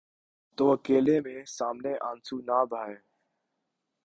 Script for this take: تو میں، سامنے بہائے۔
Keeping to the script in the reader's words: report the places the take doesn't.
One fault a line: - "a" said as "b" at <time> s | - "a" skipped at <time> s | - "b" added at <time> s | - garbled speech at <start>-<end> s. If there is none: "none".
- "اکیلے" added at 0.7 s
- "آنسو نہ" added at 2.0 s